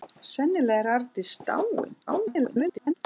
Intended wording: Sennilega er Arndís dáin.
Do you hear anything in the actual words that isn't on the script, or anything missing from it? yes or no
yes